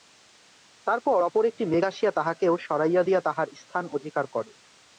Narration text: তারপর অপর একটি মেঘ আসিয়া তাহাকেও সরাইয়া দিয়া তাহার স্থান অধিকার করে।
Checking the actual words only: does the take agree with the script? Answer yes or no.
yes